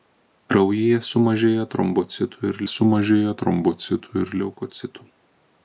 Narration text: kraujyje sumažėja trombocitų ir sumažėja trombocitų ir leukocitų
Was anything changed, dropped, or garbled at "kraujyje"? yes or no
no